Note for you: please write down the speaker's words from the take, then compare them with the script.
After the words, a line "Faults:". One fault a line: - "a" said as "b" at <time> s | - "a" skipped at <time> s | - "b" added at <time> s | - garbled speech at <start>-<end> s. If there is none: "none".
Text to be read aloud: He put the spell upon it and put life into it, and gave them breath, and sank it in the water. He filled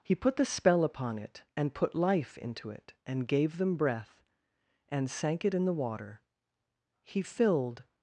He put the spell upon it and put life into it, and gave them breath, and sank it in the water. He filled
Faults:
none